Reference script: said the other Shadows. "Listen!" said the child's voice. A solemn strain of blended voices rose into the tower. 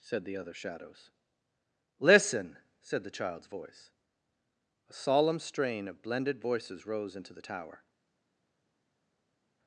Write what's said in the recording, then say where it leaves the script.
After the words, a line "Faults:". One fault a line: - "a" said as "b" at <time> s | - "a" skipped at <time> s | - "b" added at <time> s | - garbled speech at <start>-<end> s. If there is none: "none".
said the other Shadows. "Listen!" said the child's voice. A solemn strain of blended voices rose into the tower.
Faults:
none